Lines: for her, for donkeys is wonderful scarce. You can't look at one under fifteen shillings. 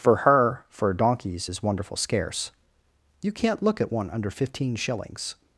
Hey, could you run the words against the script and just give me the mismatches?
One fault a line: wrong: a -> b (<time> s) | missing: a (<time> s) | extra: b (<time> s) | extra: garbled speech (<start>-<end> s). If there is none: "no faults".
no faults